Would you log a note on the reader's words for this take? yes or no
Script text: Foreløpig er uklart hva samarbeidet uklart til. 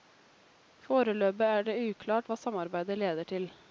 yes